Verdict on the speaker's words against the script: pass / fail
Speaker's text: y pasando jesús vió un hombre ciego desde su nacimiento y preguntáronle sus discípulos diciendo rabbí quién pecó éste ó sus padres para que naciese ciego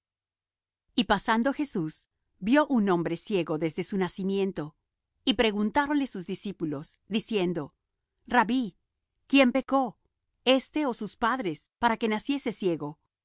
pass